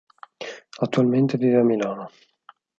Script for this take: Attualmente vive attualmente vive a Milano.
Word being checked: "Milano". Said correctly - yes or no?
yes